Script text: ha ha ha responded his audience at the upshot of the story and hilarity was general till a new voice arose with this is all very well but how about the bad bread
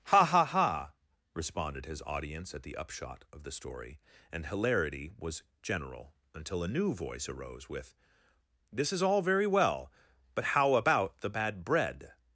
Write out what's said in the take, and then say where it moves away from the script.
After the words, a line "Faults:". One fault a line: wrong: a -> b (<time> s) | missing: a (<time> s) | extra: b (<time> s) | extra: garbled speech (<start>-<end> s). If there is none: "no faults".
ha ha ha responded his audience at the upshot of the story and hilarity was general until a new voice arose with this is all very well but how about the bad bread
Faults:
wrong: till -> until (6.3 s)